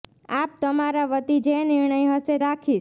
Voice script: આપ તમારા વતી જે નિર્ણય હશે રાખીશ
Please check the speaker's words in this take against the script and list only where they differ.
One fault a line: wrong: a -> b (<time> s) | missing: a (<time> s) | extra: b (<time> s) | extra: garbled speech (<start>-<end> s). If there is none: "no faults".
no faults